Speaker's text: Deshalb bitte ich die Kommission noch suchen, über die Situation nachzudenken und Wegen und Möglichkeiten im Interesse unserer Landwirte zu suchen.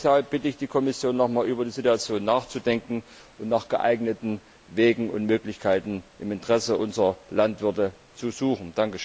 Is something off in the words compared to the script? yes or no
yes